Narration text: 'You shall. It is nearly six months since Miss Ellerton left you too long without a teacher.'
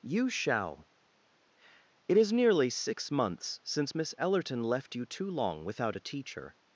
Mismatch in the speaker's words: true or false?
false